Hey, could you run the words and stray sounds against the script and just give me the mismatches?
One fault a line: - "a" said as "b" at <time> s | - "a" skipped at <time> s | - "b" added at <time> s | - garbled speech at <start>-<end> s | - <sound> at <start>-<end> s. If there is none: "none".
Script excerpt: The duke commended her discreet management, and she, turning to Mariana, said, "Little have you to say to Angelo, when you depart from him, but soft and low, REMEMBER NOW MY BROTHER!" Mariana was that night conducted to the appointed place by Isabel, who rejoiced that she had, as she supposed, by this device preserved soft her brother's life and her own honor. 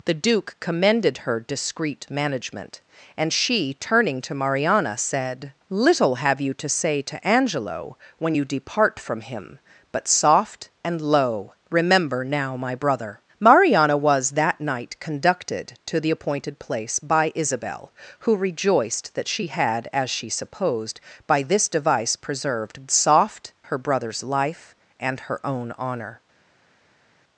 none